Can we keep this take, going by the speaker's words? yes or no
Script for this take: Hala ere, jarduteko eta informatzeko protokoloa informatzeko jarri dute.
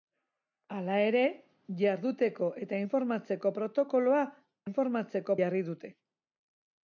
yes